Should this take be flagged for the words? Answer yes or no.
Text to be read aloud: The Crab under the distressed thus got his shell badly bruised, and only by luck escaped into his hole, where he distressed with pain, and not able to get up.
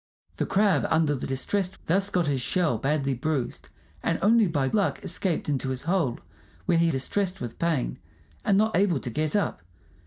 no